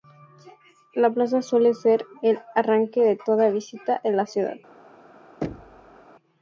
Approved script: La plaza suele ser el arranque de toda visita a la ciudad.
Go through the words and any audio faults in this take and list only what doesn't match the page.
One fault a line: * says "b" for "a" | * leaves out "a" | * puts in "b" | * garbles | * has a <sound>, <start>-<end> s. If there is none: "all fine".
* has a thud, 5.4-6.1 s